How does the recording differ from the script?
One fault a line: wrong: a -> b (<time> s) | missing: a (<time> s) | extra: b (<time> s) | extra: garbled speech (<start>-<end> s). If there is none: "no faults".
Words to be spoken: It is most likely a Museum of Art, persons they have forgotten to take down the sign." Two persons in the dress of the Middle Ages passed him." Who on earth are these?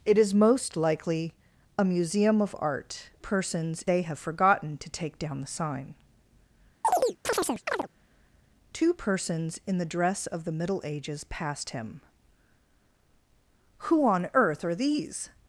no faults